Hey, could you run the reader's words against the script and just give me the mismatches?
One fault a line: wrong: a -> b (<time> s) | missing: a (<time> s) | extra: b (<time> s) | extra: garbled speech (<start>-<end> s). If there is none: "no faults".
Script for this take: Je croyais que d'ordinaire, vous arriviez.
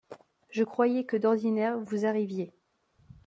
no faults